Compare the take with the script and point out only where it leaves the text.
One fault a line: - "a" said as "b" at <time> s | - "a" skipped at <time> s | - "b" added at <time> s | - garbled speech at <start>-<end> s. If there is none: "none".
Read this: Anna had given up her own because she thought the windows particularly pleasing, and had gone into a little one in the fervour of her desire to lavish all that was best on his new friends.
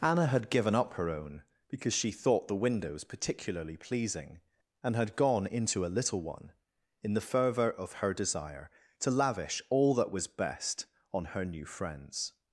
- "his" said as "her" at 11.2 s